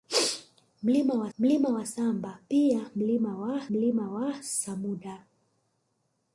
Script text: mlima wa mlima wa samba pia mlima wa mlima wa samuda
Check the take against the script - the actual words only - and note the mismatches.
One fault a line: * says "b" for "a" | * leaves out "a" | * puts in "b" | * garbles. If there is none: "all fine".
all fine